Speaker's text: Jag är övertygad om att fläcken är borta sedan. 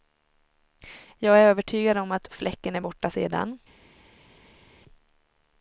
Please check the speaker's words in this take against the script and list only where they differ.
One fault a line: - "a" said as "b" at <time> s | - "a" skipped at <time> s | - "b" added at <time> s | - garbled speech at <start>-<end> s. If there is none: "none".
none